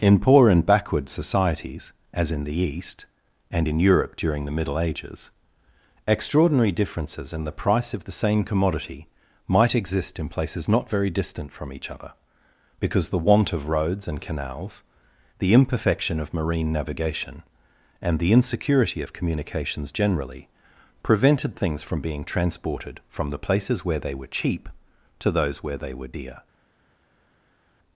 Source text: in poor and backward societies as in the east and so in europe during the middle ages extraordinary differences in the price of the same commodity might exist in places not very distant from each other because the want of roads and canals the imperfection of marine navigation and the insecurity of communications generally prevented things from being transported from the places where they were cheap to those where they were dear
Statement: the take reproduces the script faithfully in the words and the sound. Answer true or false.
false